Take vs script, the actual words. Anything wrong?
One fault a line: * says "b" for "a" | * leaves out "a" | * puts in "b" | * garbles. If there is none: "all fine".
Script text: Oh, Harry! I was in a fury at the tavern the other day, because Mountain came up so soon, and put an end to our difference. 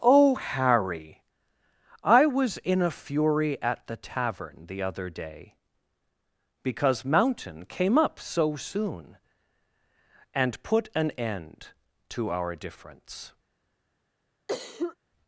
all fine